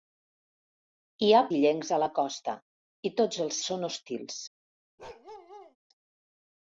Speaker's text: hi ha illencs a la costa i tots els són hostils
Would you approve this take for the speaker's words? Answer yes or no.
yes